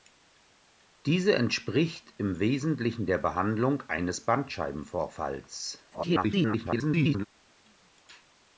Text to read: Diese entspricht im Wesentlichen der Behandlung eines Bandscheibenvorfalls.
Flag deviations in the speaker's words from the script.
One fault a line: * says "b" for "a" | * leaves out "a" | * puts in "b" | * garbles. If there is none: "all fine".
* garbles